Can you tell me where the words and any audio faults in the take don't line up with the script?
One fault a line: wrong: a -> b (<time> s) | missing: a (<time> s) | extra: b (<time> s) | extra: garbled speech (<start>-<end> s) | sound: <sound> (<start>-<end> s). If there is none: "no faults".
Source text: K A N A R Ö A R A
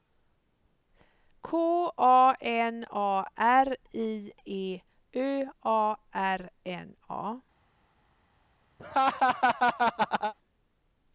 extra: I E (3.9 s)
extra: N (6.7 s)
sound: laugh (8.8-10.3 s)